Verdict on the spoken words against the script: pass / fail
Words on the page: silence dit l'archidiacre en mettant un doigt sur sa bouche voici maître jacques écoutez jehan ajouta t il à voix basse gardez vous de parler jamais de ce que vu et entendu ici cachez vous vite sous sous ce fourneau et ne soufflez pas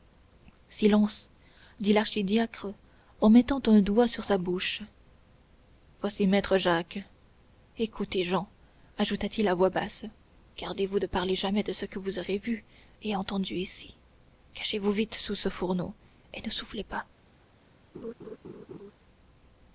fail